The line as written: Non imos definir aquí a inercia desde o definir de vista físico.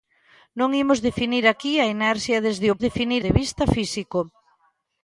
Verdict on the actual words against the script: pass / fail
pass